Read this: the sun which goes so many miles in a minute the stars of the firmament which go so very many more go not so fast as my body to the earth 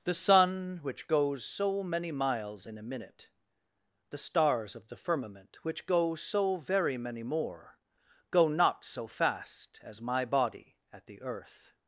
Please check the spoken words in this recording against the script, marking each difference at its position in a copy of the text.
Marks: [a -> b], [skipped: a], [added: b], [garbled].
the sun which goes so many miles in a minute the stars of the firmament which go so very many more go not so fast as my body [to -> at] the earth